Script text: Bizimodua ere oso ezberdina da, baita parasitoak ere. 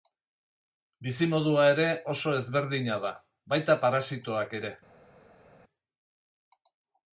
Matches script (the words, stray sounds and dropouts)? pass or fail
pass